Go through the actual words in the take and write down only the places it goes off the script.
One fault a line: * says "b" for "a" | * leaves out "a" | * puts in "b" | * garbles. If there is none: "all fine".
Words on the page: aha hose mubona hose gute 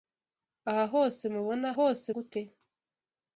all fine